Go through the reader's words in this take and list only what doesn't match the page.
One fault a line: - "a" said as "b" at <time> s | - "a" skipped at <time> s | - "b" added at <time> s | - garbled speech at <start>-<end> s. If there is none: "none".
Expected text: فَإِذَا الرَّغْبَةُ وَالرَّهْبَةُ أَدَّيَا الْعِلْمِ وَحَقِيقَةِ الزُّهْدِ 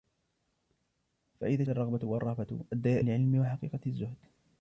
none